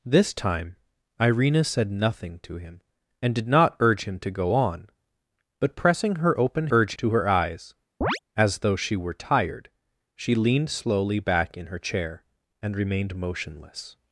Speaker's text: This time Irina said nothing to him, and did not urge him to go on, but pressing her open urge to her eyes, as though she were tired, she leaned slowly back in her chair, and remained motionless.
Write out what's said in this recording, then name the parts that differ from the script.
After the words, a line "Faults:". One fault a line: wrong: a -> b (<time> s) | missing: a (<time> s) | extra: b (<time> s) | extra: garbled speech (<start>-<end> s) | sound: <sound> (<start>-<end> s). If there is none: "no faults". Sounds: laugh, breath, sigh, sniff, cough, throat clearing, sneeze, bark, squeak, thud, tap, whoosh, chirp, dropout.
This time Irina said nothing to him, and did not urge him to go on, but pressing her open urge to her eyes, as though she were tired, she leaned slowly back in her chair, and remained motionless.
Faults:
sound: chirp (8.0-8.2 s)